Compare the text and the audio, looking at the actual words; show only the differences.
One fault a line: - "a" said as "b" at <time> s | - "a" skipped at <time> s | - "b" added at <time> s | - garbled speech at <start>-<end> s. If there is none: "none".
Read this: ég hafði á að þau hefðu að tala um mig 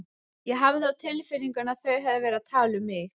- "tilfinningunni" added at 1.0 s
- "verið" added at 2.3 s